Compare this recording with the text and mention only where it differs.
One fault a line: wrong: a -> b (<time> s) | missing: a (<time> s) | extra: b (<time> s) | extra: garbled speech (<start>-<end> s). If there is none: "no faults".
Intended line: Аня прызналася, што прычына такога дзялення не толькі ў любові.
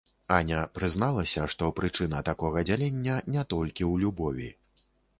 no faults